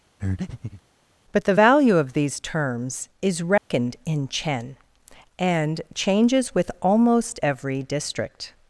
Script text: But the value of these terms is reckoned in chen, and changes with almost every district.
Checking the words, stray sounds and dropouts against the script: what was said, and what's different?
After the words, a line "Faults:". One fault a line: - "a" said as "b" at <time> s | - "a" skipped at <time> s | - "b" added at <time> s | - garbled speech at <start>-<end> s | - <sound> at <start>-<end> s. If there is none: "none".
But the value of these terms is reckoned in chen, and changes with almost every district.
Faults:
- breath at 0.2-0.8 s
- dropout at 3.6-3.7 s